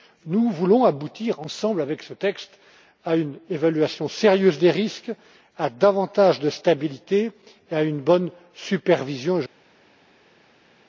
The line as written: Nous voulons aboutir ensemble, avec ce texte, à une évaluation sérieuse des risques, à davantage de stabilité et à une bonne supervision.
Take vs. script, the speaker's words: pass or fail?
pass